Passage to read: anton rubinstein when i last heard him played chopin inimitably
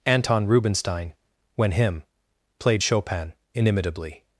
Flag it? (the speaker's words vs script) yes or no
yes